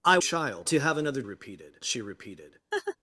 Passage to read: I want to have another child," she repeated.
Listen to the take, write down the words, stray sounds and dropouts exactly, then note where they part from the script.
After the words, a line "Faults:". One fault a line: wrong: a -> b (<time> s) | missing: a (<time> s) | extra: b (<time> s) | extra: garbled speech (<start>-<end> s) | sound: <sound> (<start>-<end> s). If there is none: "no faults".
I child to have another repeated," she repeated.
Faults:
wrong: want -> child (0.2 s)
wrong: child -> repeated (1.2 s)
sound: laugh (2.7-3.0 s)